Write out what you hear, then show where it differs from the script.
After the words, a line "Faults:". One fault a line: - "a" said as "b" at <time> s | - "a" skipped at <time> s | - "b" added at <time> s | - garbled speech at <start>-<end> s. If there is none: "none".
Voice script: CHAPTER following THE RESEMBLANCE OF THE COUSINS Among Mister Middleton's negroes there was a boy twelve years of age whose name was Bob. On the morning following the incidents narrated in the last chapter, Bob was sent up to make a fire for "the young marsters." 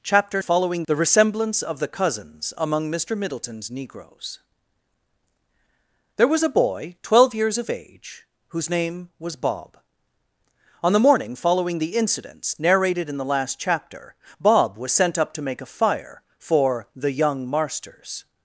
CHAPTER following THE RESEMBLANCE OF THE COUSINS Among Mister Middleton's negroes there was a boy twelve years of age whose name was Bob. On the morning following the incidents narrated in the last chapter, Bob was sent up to make a fire for "the young marsters."
Faults:
none